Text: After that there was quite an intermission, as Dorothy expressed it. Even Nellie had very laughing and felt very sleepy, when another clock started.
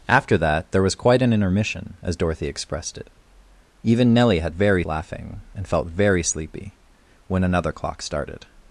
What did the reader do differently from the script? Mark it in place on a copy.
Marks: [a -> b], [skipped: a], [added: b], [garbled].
After that there was quite an intermission, as Dorothy expressed it. Even Nellie had very laughing and felt very sleepy, when another clock started.